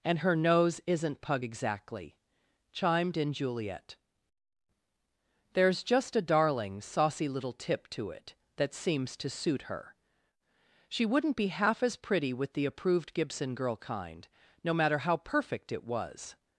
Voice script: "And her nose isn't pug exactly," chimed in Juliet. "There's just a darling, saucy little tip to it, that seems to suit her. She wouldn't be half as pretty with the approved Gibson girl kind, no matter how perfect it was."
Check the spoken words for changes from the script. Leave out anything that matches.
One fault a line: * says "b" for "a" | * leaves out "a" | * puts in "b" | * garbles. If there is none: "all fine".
all fine